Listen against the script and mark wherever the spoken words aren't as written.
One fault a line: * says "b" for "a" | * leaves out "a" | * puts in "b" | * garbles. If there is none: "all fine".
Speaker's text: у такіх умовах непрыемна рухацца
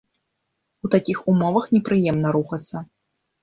all fine